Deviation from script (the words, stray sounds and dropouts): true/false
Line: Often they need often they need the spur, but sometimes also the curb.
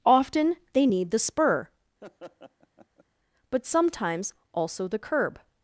true